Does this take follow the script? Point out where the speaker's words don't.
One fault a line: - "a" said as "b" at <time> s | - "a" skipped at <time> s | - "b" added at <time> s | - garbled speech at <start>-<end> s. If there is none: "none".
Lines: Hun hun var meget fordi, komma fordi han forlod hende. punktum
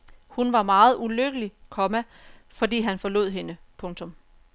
- "hun" skipped at 0.5 s
- "fordi" said as "ulykkelig" at 1.0 s